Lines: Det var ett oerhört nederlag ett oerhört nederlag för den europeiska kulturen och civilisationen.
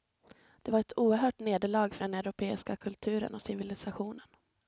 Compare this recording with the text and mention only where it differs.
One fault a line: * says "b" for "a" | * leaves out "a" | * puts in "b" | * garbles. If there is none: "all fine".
* leaves out "ett oerhört nederlag"